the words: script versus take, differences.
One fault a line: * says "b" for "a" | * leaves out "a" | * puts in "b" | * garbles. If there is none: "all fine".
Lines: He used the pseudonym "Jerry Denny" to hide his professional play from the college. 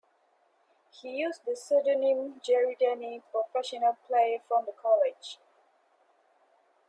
* leaves out "to hide his"